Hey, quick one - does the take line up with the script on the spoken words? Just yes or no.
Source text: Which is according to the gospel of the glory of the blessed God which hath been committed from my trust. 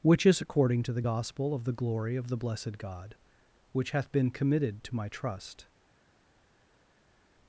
no